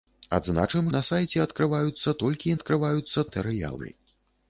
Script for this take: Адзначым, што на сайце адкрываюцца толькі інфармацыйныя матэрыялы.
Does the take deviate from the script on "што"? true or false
true